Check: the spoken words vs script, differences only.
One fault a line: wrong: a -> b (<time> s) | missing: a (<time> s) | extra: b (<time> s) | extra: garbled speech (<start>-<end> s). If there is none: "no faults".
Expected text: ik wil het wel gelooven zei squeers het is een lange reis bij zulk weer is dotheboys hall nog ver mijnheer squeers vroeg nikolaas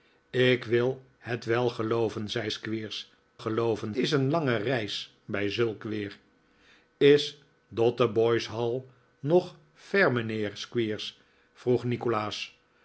wrong: het -> gelooven (3.4 s)